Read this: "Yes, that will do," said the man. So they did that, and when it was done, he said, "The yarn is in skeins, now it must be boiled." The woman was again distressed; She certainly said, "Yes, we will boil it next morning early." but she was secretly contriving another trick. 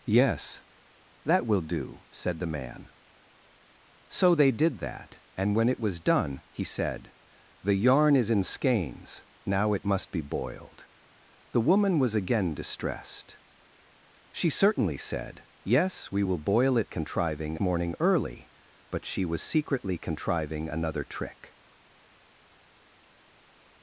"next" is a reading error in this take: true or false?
true